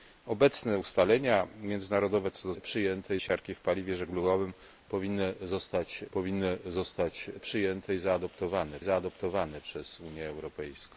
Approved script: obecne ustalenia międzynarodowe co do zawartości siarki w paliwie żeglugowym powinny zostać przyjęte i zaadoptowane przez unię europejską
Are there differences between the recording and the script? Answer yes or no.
yes